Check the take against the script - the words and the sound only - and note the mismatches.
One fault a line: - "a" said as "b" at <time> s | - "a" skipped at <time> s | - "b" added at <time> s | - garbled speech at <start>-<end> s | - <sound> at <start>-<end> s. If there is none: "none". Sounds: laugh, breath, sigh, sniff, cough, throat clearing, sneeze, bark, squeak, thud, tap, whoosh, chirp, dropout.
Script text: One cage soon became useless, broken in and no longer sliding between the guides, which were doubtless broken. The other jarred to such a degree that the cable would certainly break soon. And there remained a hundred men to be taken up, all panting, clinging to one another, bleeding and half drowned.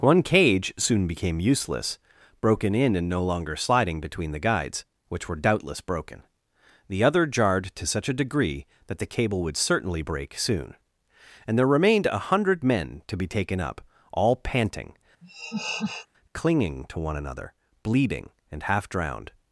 - laugh at 15.2-16.1 s